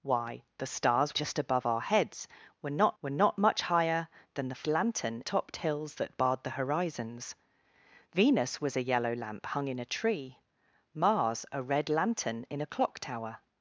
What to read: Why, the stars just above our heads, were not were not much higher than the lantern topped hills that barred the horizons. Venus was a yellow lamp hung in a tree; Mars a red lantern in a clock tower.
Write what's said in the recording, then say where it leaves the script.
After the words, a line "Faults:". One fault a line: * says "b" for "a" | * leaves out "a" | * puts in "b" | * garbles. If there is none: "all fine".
Why, the stars just above our heads, were not were not much higher than the lantern topped hills that barred the horizons. Venus was a yellow lamp hung in a tree; Mars a red lantern in a clock tower.
Faults:
all fine